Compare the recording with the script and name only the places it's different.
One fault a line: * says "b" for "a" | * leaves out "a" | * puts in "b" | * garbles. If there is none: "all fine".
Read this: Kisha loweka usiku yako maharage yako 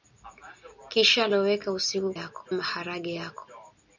all fine